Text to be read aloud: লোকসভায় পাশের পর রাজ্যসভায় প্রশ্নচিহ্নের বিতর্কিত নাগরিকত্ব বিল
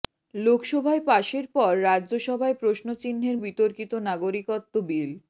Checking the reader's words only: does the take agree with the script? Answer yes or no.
yes